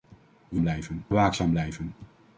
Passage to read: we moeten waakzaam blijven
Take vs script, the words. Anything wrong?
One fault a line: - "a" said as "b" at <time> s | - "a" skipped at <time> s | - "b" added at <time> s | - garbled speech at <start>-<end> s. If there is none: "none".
- "moeten" said as "blijven" at 0.6 s